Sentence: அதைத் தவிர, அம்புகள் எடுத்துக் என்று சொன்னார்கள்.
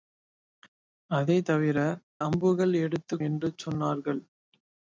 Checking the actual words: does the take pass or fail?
pass